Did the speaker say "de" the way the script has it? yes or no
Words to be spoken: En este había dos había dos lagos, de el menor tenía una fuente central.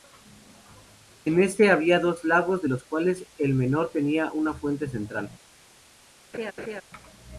no